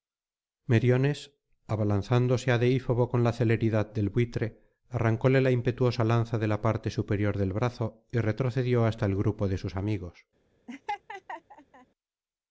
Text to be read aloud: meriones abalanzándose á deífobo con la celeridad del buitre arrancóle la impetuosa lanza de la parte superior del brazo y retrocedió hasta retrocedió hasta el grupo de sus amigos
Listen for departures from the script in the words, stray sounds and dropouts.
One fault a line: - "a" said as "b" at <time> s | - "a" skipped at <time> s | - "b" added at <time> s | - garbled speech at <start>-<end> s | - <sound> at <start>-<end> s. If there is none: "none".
- "retrocedió hasta" skipped at 9.0 s
- laugh at 10.7-11.9 s